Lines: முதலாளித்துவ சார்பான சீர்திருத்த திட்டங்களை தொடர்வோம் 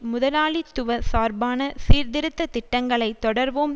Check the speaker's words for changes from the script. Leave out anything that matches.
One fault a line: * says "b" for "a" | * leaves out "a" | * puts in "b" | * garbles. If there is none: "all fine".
all fine